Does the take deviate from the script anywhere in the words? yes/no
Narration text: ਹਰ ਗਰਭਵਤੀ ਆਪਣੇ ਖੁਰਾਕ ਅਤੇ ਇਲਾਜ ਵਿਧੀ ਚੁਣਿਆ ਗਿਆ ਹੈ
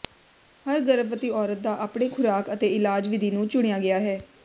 yes